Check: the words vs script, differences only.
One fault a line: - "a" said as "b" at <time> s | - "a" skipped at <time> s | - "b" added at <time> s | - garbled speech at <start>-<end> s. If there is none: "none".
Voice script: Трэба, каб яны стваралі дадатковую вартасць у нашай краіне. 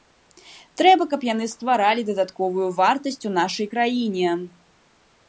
none